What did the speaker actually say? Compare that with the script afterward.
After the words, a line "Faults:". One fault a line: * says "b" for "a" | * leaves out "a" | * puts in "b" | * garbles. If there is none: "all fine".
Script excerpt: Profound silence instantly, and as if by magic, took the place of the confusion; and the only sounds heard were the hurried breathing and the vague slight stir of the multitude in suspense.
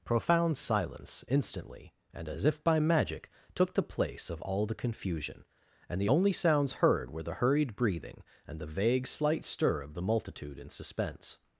Profound silence instantly, and as if by magic, took the place of all the confusion; and the only sounds heard were the hurried breathing and the vague slight stir of the multitude in suspense.
Faults:
* puts in "all"